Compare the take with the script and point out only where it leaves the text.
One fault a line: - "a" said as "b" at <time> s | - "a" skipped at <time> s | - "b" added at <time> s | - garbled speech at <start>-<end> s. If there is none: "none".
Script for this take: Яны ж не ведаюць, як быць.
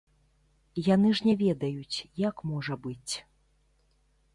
- "можа" added at 2.5 s